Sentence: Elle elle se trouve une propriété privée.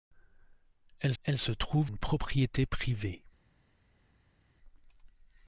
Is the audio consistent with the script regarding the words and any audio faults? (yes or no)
yes